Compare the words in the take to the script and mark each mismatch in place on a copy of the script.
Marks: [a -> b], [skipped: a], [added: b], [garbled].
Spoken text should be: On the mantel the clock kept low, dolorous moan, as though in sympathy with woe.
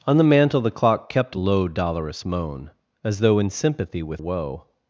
On the mantel the clock kept low, dolorous moan, as though in sympathy with woe.